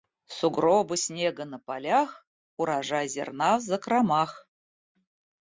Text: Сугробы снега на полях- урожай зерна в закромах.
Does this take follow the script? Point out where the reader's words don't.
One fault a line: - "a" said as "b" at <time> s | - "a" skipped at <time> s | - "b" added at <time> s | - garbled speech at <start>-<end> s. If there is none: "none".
none